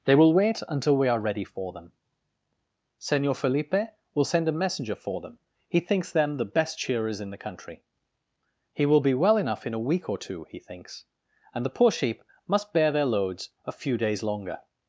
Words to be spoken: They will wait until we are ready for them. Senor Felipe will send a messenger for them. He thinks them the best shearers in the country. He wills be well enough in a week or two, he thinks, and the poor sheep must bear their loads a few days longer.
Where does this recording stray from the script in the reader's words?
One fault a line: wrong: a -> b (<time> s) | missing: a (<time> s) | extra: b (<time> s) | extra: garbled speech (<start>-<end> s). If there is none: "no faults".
wrong: wills -> will (8.8 s)